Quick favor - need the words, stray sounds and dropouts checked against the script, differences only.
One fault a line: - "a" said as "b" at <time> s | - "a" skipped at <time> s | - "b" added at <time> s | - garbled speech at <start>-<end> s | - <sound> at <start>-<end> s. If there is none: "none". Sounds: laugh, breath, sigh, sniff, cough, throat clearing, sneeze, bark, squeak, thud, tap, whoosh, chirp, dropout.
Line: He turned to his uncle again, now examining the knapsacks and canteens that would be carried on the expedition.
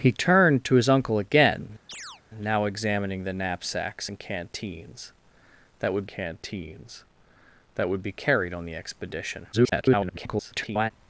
- chirp at 1.9-2.2 s
- "canteens that would" added at 6.1 s
- garbled speech at 9.5-10.9 s